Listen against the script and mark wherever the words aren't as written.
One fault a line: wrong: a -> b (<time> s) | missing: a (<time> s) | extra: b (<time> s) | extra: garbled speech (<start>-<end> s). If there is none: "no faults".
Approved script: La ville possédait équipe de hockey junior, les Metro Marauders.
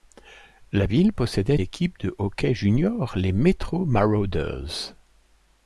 no faults